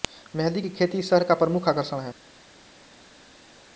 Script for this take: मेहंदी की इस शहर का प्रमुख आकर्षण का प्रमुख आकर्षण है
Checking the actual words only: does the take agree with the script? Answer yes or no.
no